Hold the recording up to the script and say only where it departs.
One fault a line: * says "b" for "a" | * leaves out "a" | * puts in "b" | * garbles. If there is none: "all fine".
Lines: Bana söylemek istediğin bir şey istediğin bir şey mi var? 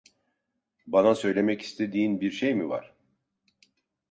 * leaves out "istediğin bir şey"